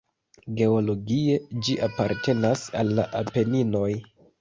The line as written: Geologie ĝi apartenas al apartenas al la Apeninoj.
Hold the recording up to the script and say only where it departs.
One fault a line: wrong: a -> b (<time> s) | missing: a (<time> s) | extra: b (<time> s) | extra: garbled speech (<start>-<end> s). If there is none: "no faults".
missing: apartenas al (3.0 s)